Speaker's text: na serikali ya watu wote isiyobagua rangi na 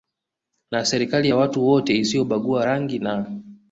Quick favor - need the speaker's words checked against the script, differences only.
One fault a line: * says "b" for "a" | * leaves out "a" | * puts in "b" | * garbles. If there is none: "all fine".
all fine